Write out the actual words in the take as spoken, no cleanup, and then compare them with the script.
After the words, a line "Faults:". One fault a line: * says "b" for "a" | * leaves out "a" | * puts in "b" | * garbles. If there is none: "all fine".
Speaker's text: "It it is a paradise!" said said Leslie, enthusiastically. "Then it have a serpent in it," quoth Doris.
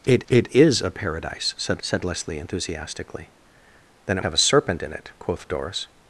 "It it is a paradise!" said said Leslie, enthusiastically. "Then it have a serpent in it," quoth Doris.
Faults:
all fine